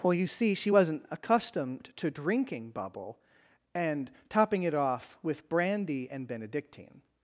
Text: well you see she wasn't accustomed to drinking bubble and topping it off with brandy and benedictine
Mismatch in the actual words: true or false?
false